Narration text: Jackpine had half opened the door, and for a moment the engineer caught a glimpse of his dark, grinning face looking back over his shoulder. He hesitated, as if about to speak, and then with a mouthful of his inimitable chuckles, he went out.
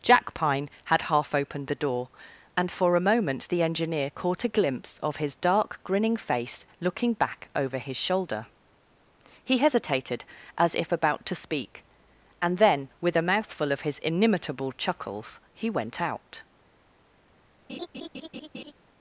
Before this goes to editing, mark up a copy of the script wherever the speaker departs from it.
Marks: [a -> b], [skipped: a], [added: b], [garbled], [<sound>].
Jackpine had half opened the door, and for a moment the engineer caught a glimpse of his dark, grinning face looking back over his shoulder. He hesitated, as if about to speak, and then with a mouthful of his inimitable chuckles, he went out. [laugh]